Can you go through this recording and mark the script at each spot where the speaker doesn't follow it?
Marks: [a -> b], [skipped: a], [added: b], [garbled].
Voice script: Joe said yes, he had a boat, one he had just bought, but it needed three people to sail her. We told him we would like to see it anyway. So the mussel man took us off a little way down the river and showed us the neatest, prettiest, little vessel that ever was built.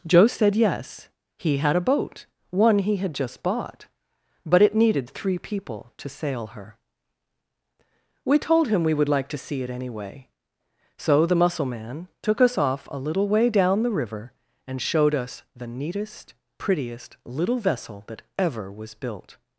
Joe said yes, he had a boat, one he had just bought, but it needed three people to sail her. We told him we would like to see it anyway. So the mussel man took us off a little way down the river and showed us the neatest, prettiest, little vessel that ever was built.